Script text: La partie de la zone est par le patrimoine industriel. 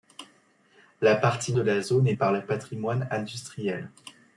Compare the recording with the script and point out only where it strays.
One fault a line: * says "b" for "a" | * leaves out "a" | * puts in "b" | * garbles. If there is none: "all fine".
all fine